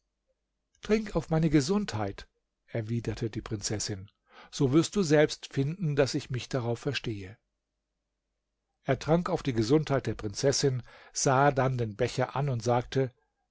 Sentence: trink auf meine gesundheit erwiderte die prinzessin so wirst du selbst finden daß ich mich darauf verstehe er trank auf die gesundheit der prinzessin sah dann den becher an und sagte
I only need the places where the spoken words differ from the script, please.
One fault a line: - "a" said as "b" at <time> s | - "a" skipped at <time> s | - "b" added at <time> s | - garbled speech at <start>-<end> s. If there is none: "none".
none